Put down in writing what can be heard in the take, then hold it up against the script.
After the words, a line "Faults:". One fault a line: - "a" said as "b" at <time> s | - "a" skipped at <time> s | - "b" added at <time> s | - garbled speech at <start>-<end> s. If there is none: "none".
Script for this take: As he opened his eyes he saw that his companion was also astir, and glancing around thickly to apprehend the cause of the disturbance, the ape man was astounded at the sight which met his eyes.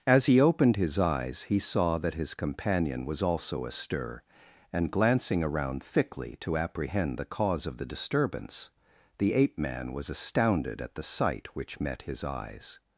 As he opened his eyes he saw that his companion was also astir, and glancing around thickly to apprehend the cause of the disturbance, the ape man was astounded at the sight which met his eyes.
Faults:
none